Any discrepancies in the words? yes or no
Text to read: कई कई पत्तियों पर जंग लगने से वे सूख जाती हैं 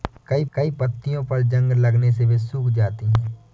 no